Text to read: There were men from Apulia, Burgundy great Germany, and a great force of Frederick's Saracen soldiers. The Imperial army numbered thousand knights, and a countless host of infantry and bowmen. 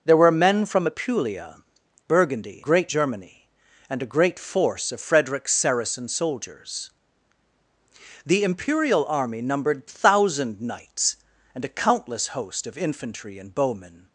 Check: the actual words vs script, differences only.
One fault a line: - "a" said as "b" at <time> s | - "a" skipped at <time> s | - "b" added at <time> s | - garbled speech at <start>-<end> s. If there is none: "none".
none